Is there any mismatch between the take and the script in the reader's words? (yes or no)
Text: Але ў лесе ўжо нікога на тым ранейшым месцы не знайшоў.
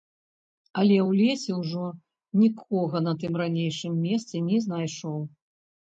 no